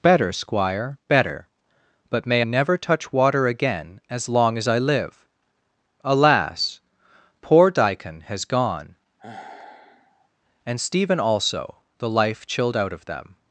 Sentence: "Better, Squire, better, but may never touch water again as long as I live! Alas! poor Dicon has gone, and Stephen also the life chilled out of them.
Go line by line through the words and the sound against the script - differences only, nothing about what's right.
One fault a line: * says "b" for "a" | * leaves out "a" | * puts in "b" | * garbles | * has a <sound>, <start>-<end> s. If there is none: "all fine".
* has a sigh, 9.2-10.3 s